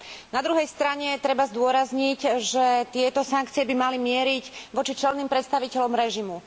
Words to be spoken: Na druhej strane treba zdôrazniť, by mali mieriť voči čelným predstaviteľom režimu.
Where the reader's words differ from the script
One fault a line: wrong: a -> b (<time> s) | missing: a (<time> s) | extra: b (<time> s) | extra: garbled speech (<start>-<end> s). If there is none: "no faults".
extra: že tieto sankcie (2.4 s)